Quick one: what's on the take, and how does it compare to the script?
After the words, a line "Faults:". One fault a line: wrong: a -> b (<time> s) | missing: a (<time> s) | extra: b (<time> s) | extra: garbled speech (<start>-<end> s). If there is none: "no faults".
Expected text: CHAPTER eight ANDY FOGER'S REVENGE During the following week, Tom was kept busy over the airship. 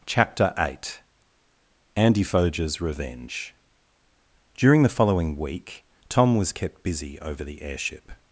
CHAPTER eight ANDY FOGER'S REVENGE During the following week, Tom was kept busy over the airship.
Faults:
no faults